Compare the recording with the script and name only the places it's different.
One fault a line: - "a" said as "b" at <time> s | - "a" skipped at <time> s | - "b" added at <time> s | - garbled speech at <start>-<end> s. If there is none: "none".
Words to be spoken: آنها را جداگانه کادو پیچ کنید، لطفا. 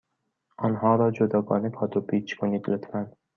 none